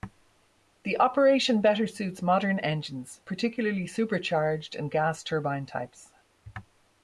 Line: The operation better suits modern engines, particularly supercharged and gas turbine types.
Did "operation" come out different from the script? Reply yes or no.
no